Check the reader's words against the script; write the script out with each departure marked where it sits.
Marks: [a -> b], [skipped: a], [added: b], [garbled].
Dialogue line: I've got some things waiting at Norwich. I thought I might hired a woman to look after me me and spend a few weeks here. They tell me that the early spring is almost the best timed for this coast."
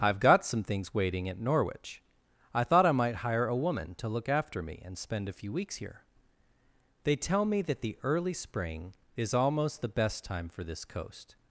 I've got some things waiting at Norwich. I thought I might [hired -> hire] a woman to look after me [skipped: me] and spend a few weeks here. They tell me that the early spring is almost the best [timed -> time] for this coast."